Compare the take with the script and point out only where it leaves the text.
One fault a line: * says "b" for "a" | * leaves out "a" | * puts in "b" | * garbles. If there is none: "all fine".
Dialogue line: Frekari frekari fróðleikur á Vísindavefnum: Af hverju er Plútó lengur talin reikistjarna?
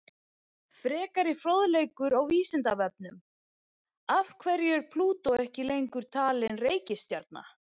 * leaves out "frekari"
* puts in "ekki"